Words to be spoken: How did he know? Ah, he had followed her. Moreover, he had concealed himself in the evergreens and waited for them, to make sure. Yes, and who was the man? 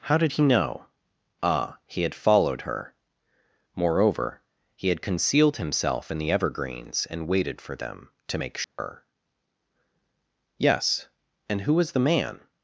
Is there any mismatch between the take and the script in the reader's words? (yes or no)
no